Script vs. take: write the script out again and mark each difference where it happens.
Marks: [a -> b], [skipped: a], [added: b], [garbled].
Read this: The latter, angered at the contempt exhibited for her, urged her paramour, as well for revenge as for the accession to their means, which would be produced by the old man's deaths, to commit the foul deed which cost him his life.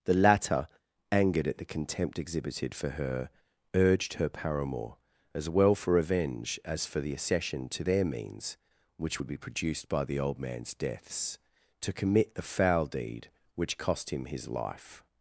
The latter, angered at the contempt exhibited for her, urged her paramour, as well for revenge as for the accession to their means, which would be produced by the old man's deaths, to commit the foul deed which cost him his life.